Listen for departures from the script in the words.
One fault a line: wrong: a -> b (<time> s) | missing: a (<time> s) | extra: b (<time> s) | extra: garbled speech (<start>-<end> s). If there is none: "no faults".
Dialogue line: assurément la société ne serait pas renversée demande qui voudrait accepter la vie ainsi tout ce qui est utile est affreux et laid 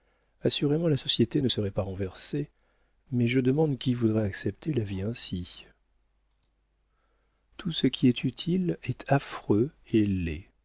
extra: mais je (3.1 s)